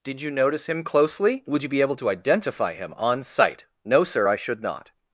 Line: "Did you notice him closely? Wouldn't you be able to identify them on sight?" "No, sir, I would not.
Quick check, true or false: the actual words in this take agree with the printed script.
false